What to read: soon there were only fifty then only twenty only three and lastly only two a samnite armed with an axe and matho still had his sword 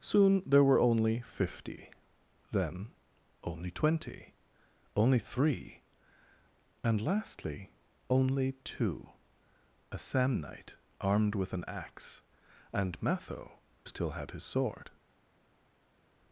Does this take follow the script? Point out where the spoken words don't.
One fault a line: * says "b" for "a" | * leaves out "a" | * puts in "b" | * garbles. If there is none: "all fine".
all fine